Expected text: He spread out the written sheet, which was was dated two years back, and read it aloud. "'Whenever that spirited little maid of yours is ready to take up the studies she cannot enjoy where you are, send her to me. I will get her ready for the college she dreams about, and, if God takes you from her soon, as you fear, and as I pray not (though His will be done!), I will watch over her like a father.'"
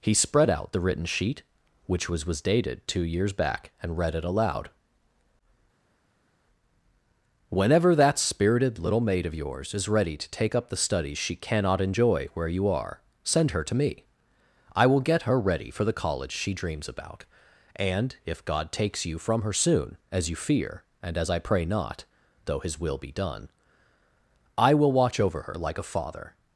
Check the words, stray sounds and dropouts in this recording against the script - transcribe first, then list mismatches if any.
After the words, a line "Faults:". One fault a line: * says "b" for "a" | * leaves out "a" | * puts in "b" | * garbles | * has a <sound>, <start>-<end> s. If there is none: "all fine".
He spread out the written sheet, which was was dated two years back, and read it aloud. "'Whenever that spirited little maid of yours is ready to take up the studies she cannot enjoy where you are, send her to me. I will get her ready for the college she dreams about, and, if God takes you from her soon, as you fear, and as I pray not (though His will be done!), I will watch over her like a father.'"
Faults:
all fine